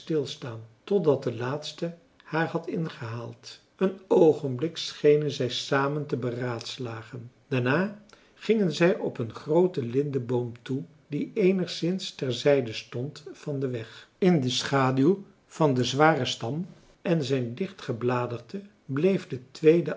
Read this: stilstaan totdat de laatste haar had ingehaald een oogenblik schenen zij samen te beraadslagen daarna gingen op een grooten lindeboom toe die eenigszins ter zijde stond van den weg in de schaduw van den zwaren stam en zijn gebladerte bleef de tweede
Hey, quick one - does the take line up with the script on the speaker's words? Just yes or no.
no